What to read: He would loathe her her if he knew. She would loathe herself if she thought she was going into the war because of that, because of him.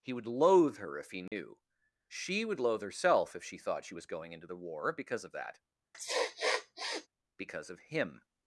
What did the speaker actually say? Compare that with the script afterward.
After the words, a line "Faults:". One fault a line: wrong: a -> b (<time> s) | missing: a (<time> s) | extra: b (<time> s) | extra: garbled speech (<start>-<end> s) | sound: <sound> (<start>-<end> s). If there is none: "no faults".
He would loathe her if he knew. She would loathe herself if she thought she was going into the war because of that, because of him.
Faults:
missing: her (1.0 s)
sound: dropout (1.3-1.3 s)
sound: sniff (5.9-7.1 s)